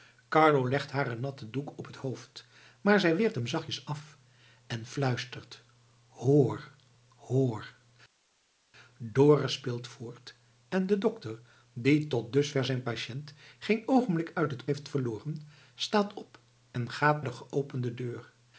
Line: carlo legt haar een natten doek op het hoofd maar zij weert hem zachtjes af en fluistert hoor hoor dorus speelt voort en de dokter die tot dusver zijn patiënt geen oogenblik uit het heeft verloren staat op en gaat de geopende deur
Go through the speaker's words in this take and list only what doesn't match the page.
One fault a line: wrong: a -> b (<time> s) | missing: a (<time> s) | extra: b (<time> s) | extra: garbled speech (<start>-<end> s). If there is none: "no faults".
no faults